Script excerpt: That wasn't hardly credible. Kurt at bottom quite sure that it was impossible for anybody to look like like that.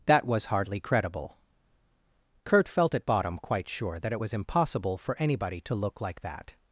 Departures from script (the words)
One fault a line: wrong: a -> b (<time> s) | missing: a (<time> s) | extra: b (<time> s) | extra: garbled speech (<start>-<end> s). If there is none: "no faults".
wrong: wasn't -> was (0.2 s)
extra: felt (2.7 s)
missing: like (6.2 s)